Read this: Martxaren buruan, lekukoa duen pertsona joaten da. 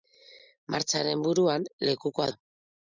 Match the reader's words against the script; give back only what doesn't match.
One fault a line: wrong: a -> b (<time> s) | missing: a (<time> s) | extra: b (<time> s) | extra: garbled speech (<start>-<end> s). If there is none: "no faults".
missing: duen pertsona joaten (2.3 s)